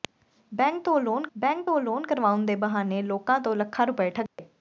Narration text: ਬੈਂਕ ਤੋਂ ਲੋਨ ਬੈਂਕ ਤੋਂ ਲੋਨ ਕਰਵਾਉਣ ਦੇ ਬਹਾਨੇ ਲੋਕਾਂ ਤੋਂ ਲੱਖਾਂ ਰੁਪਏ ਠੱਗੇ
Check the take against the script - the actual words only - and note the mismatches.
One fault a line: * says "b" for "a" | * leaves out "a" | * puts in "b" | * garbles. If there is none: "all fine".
all fine